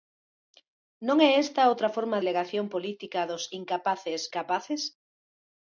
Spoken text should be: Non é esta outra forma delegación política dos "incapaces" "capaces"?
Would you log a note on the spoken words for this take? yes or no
no